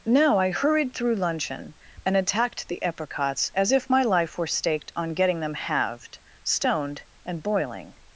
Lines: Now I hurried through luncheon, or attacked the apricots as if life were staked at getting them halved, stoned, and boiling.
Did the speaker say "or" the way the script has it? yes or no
no